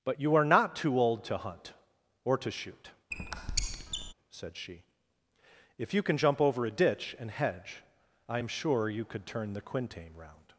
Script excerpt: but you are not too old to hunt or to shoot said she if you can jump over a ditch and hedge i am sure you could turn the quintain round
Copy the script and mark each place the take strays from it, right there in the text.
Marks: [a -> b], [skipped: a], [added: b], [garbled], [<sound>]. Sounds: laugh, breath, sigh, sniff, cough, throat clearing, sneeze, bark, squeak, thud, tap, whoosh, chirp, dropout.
but you are not too old to hunt or to shoot [squeak] said she if you can jump over a ditch and hedge i am sure you could turn the quintain round